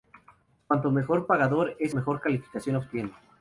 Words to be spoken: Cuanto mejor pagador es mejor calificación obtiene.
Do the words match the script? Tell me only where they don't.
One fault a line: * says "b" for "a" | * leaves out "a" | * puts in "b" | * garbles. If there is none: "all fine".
all fine